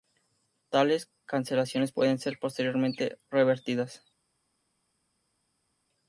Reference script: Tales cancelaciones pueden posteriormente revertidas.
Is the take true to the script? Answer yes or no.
no